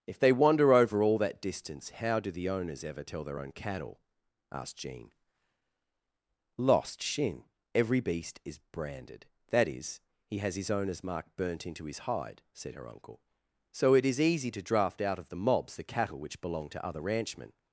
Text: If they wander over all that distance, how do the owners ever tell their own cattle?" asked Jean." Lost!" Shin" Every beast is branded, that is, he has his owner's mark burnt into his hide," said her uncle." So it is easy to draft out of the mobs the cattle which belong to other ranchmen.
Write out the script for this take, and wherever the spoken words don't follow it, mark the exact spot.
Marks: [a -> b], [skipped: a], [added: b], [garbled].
If they wander over all that distance, how do the owners ever tell their own cattle?" asked Jean." Lost!" Shin" Every beast is branded, that is, he has his owner's mark burnt into his hide," said her uncle." So it is easy to draft out of the mobs the cattle which belong to other ranchmen.